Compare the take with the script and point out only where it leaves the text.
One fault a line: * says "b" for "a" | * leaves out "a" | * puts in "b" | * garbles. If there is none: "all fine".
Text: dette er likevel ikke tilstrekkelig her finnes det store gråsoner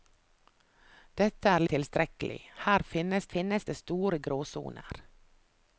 * leaves out "likevel ikke"
* puts in "finnes"